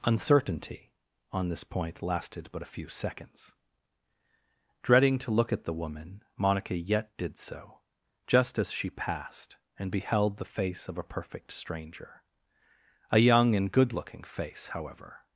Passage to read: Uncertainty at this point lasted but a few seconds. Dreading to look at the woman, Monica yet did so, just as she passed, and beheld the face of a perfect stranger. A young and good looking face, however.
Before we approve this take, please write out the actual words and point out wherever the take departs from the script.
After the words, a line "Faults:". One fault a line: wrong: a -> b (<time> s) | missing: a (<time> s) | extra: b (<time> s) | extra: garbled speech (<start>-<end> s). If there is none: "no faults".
Uncertainty on this point lasted but a few seconds. Dreading to look at the woman, Monica yet did so, just as she passed, and beheld the face of a perfect stranger. A young and good looking face, however.
Faults:
wrong: at -> on (1.3 s)